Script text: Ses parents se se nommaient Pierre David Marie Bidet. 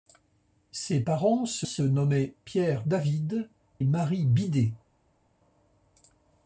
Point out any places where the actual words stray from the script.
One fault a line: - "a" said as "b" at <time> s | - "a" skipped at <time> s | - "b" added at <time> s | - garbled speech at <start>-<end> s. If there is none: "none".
none